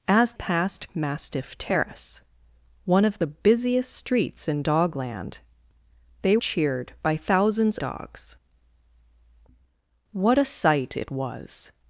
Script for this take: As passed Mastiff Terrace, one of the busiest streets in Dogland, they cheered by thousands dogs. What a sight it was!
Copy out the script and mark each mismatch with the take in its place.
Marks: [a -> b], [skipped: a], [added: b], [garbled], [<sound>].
As passed Mastiff Terrace, one of the busiest streets in Dogland, they cheered by thousands dogs. What a sight it was!